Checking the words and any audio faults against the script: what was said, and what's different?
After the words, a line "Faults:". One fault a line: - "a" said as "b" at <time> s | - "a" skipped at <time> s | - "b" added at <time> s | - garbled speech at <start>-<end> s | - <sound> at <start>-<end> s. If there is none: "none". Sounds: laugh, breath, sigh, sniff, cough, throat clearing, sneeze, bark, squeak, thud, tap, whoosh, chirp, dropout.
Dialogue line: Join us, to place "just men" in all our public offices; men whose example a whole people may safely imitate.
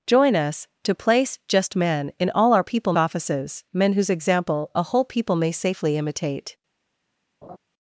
Join us, to place "just men" in all our people offices; men whose example a whole people may safely imitate.
Faults:
- "public" said as "people" at 2.6 s
- laugh at 7.4-7.6 s